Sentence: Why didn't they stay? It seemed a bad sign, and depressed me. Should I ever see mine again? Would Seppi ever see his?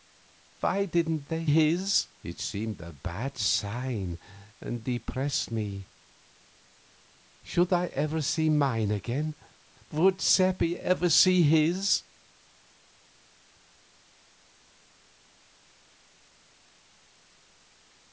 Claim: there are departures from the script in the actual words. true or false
true